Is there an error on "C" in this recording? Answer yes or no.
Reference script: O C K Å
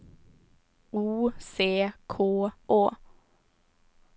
no